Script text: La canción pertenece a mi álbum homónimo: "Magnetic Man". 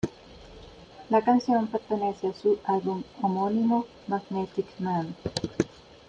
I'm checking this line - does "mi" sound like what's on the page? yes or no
no